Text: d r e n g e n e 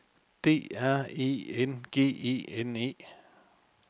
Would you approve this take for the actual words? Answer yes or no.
yes